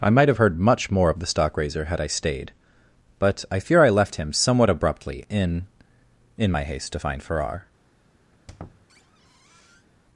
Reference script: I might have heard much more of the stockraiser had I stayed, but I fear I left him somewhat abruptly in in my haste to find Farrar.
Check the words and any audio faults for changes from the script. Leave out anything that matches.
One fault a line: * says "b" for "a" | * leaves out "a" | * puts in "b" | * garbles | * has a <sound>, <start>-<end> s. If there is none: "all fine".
* has a squeak, 8.3-9.9 s